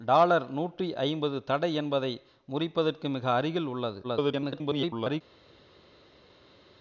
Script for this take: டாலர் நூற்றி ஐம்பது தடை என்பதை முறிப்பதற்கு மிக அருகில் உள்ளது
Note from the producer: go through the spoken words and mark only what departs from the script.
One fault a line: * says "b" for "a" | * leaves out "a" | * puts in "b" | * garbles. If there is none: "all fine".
* garbles